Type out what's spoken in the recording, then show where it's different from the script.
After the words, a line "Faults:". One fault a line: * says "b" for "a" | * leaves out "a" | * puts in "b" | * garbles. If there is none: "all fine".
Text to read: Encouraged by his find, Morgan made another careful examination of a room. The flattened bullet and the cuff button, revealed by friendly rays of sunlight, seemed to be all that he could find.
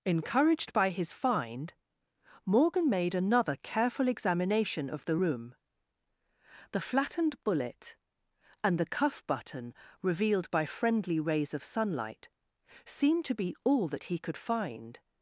Encouraged by his find, Morgan made another careful examination of the room. The flattened bullet and the cuff button, revealed by friendly rays of sunlight, seemed to be all that he could find.
Faults:
* says "the" for "a"